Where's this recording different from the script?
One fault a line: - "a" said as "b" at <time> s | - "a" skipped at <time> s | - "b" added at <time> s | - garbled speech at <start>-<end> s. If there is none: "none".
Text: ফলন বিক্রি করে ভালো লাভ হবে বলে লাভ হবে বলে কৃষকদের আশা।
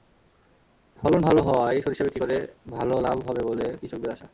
- "ভালো হওয়ায় সরিষা" added at 1.2 s
- "লাভ হবে বলে" skipped at 3.7 s